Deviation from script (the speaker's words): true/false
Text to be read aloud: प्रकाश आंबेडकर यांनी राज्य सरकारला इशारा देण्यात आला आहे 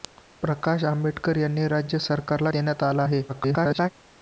true